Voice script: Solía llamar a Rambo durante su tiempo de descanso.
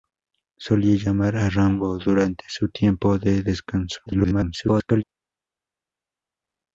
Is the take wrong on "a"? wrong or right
right